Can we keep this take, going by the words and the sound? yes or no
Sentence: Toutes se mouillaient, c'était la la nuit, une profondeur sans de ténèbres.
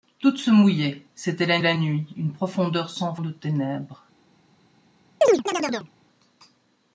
no